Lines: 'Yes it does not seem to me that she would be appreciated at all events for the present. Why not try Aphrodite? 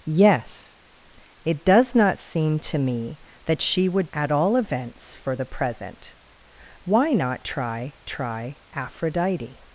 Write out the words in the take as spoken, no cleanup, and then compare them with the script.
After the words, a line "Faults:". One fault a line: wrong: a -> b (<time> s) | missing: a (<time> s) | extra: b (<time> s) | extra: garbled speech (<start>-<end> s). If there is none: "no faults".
'Yes it does not seem to me that she would at all events for the present. Why not try try Aphrodite?
Faults:
missing: be appreciated (4.1 s)
extra: try (8.1 s)